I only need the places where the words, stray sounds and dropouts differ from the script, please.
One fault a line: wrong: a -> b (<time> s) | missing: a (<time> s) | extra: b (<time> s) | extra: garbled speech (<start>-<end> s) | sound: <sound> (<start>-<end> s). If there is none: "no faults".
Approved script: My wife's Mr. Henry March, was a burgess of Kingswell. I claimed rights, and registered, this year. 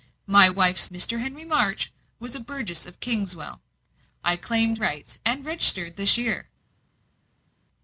no faults